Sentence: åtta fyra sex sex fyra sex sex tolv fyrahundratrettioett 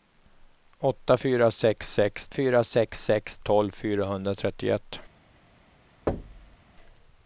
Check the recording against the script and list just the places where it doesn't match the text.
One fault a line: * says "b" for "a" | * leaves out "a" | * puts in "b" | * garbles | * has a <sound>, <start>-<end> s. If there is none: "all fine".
* has a thud, 6.1-6.6 s